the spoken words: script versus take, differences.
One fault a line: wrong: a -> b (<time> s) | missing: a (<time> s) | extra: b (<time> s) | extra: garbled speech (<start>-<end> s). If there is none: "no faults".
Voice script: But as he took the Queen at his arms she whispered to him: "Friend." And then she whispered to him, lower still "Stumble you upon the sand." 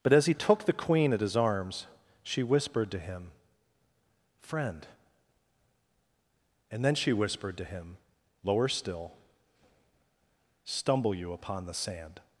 no faults